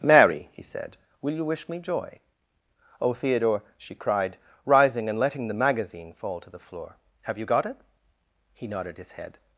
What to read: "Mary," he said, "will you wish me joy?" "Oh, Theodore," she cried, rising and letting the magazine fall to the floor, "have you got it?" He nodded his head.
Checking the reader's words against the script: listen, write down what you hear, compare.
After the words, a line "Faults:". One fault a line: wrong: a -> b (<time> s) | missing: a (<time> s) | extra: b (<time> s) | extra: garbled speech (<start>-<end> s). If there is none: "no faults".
"Mary," he said, "will you wish me joy?" "Oh, Theodore," she cried, rising and letting the magazine fall to the floor, "have you got it?" He nodded his head.
Faults:
no faults